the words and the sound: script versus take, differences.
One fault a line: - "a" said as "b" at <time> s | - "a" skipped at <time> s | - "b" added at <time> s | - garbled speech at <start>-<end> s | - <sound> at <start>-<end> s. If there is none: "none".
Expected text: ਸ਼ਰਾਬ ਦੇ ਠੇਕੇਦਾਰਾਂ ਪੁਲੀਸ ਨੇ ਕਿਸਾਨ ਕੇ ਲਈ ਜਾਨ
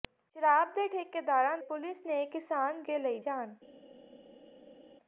none